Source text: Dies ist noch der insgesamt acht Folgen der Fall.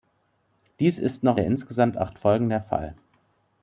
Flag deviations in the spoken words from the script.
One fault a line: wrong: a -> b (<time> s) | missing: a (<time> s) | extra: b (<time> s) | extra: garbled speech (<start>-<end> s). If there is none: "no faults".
no faults